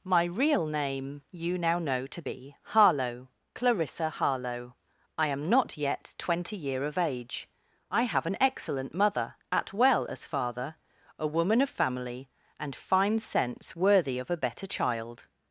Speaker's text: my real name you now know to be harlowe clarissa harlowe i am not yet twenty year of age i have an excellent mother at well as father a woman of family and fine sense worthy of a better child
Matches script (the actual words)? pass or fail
pass